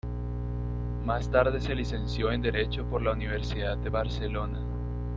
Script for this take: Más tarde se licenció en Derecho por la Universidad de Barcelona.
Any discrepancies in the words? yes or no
no